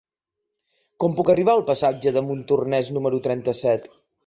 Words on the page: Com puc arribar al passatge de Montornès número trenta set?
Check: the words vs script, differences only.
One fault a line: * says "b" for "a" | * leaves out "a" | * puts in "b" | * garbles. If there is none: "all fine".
all fine